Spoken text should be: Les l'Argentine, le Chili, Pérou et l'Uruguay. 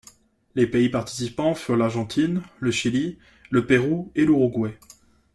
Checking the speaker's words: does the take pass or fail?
fail